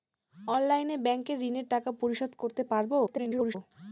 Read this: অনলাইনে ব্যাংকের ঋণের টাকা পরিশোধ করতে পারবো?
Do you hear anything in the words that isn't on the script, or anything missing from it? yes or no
yes